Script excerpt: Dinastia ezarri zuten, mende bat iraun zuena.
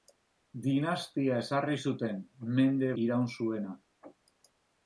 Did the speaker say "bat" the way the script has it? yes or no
no